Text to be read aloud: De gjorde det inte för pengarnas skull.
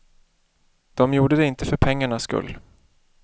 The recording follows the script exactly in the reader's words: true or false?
true